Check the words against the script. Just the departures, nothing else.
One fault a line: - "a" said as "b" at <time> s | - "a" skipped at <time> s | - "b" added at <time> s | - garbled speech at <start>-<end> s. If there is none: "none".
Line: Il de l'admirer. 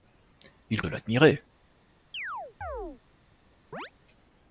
none